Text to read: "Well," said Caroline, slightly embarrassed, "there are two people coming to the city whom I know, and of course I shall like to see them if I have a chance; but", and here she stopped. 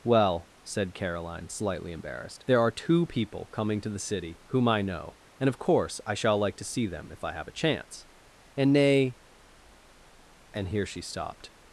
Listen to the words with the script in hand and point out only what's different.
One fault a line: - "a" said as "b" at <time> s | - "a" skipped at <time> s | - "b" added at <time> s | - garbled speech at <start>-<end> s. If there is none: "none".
- "but" said as "and nay" at 8.6 s